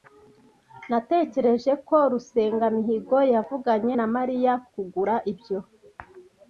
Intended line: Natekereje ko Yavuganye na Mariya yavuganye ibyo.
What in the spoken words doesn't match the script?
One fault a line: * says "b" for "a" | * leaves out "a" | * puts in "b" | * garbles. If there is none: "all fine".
* puts in "Rusengamihigo"
* says "kugura" for "yavuganye"